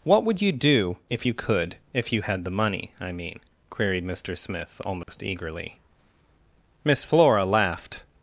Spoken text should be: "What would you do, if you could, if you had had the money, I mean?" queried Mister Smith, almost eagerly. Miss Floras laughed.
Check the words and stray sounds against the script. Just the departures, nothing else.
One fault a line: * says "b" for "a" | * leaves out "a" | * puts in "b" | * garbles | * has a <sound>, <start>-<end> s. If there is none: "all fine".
* leaves out "had"
* has a dropout, 5.0-5.1 s
* says "Flora" for "Floras"